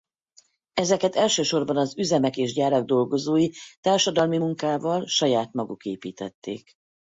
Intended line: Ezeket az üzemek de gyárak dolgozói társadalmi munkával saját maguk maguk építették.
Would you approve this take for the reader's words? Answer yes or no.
no